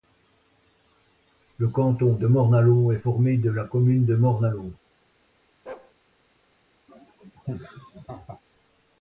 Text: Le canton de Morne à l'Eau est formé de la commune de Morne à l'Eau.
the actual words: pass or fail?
pass